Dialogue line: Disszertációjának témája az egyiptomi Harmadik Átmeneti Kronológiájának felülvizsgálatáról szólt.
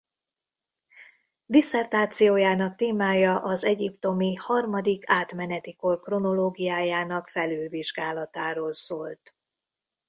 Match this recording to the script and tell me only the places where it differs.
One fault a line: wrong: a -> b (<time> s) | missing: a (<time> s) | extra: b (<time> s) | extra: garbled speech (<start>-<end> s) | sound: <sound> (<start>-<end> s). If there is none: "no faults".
extra: Kor (5.8 s)